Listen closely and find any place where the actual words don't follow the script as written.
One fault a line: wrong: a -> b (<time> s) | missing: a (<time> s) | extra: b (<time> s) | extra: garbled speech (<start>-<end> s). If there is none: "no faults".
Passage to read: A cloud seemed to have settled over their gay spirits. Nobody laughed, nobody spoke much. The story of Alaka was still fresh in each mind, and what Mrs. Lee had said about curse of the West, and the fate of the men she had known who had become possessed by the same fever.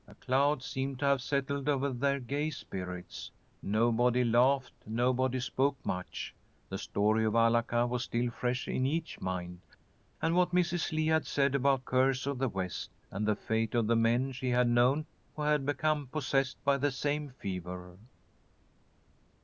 no faults